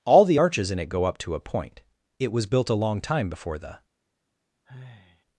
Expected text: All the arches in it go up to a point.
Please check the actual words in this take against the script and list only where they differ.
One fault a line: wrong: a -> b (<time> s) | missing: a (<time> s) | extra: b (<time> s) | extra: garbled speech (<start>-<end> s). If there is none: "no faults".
extra: It was built a long time before the (2.2 s)